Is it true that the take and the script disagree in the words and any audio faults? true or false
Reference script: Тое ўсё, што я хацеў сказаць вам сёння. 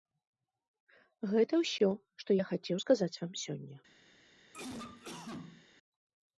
true